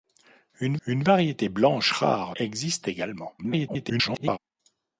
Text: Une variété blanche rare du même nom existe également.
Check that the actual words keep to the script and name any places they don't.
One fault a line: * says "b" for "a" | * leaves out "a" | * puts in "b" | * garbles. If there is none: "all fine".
* puts in "une"
* leaves out "du même nom"
* garbles